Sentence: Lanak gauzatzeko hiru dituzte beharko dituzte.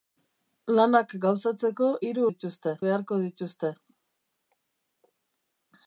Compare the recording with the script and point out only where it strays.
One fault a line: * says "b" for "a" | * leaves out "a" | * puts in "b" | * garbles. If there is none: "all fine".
all fine